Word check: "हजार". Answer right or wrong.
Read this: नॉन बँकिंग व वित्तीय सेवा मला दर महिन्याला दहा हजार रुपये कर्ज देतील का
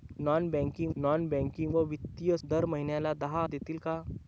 wrong